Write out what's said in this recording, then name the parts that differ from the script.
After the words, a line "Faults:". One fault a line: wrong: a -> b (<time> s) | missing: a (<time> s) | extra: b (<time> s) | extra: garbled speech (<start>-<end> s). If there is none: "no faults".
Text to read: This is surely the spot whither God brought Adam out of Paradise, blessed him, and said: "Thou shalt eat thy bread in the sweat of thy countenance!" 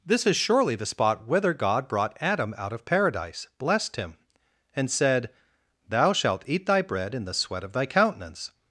This is surely the spot whither God brought Adam out of Paradise, blessed him, and said: "Thou shalt eat thy bread in the sweat of thy countenance!"
Faults:
no faults